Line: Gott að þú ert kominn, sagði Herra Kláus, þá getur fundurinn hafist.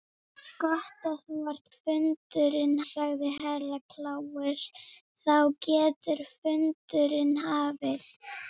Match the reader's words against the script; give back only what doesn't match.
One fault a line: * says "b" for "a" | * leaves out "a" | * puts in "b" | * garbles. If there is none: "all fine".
* says "fundurinn" for "kominn"